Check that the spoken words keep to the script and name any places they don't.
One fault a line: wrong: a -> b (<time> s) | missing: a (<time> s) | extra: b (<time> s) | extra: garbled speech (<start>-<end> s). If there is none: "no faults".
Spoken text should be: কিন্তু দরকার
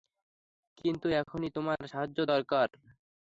extra: এখনই তোমার সাহায্য (1.2 s)